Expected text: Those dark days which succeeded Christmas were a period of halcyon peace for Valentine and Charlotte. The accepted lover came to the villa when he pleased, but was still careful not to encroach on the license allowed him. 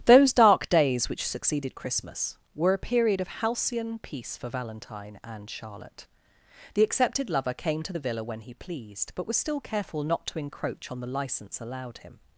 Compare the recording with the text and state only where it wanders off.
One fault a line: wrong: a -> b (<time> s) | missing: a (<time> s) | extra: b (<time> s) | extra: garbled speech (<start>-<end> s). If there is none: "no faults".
no faults